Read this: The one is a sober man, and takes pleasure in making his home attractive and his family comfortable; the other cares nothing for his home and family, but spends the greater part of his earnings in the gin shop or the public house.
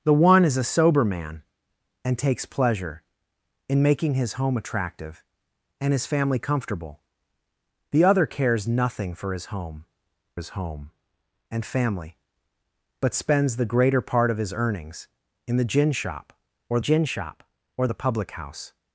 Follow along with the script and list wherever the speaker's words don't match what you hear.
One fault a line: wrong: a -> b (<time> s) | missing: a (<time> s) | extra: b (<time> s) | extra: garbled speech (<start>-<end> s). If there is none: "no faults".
extra: his home (10.3 s)
extra: gin shop or (16.8 s)